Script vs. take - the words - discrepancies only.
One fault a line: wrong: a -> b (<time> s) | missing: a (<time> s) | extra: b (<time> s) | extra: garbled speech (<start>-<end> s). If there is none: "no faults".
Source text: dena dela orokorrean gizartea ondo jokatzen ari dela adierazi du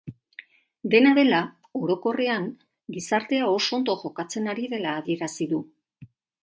extra: oso (3.6 s)